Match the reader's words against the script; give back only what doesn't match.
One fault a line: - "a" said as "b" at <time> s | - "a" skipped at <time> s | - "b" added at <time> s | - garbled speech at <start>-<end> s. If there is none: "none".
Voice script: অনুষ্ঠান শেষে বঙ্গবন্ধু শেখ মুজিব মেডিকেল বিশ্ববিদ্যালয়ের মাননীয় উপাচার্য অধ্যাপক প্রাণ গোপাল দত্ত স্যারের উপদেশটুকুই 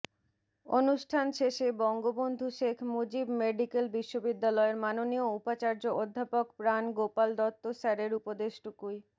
none